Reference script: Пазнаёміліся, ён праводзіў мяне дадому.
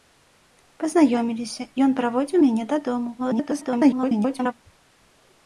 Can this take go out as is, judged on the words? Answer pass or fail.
fail